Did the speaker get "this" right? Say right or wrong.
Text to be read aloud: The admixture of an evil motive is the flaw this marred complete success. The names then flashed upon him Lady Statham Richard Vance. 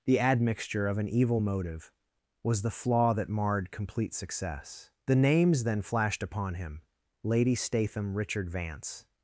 wrong